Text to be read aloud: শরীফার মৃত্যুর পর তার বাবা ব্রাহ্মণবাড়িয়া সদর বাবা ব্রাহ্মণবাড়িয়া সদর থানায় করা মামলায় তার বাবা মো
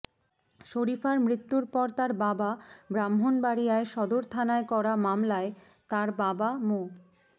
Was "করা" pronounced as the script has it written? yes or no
yes